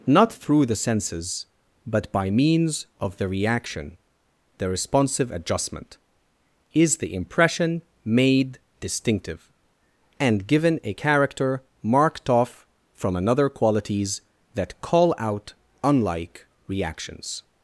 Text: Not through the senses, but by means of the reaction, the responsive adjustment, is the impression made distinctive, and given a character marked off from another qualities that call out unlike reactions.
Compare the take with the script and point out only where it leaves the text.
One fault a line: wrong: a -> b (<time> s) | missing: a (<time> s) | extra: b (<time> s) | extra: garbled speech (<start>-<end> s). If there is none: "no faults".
no faults